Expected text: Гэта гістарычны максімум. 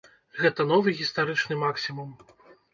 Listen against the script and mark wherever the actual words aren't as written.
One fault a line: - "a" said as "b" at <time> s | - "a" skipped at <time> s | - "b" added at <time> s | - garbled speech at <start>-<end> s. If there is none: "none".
- "новы" added at 0.7 s